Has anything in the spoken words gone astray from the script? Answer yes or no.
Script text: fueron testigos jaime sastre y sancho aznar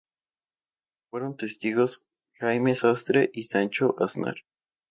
no